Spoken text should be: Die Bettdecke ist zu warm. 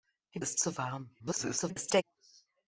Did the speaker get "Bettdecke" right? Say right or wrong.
wrong